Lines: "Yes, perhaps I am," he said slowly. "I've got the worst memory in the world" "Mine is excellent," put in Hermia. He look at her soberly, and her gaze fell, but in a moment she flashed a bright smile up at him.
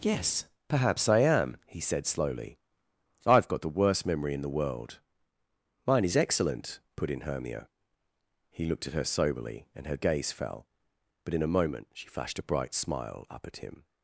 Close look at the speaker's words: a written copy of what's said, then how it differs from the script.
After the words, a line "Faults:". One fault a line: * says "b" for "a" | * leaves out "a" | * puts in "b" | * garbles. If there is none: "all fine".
"Yes, perhaps I am," he said slowly. "I've got the worst memory in the world" "Mine is excellent," put in Hermia. He looked at her soberly, and her gaze fell, but in a moment she flashed a bright smile up at him.
Faults:
* says "looked" for "look"